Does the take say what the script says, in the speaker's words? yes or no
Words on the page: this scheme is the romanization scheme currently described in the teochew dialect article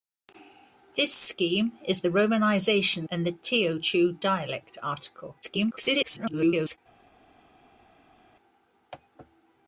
no